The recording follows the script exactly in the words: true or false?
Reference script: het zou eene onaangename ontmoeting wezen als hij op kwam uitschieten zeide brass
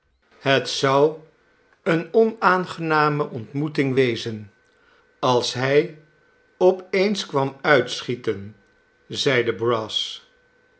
false